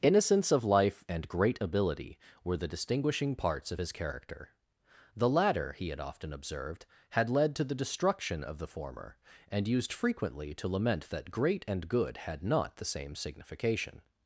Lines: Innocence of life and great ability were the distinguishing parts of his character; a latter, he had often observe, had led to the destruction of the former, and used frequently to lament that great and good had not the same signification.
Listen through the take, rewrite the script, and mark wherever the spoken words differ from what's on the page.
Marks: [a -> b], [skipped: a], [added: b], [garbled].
Innocence of life and great ability were the distinguishing parts of his character; [a -> the] latter, he had often [observe, -> observed] had led to the destruction of the former, and used frequently to lament that great and good had not the same signification.